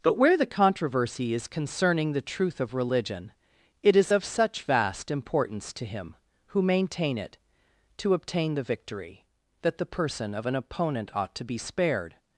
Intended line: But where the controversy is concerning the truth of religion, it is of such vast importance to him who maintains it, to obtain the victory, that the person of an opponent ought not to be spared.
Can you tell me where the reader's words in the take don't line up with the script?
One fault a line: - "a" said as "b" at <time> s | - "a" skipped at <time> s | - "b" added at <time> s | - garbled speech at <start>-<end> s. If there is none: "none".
- "maintains" said as "maintain" at 6.6 s
- "not" skipped at 11.3 s